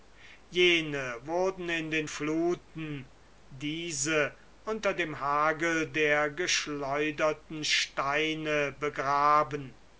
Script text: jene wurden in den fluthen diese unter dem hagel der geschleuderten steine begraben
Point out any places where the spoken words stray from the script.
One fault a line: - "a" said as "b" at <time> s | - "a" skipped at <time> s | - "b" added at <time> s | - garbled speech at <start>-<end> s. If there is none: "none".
none